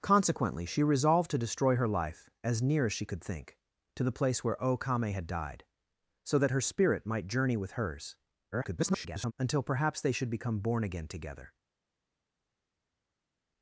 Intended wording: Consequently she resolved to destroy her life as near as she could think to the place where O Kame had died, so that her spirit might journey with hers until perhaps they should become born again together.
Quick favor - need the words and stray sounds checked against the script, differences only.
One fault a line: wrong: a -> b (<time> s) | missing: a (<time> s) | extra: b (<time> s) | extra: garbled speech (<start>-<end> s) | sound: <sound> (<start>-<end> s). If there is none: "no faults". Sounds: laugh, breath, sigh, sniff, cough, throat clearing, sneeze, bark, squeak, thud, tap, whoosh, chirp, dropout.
extra: garbled speech (8.5-9.3 s)